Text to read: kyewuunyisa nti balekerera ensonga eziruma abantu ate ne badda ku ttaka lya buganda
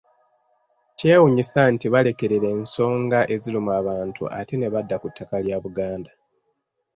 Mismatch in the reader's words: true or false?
false